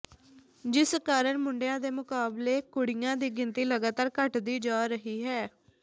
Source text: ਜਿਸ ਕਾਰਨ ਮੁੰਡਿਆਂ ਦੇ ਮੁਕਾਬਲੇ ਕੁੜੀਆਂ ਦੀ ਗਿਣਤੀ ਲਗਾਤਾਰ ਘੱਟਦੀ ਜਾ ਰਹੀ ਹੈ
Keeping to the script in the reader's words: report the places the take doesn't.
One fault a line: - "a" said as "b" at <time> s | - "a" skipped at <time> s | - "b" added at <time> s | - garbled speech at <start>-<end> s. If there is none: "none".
none